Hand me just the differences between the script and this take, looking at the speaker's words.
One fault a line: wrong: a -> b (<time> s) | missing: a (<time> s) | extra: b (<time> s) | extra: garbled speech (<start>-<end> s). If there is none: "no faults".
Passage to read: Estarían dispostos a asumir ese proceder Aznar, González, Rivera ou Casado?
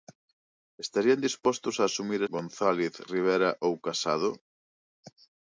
missing: ese proceder Aznar (2.2 s)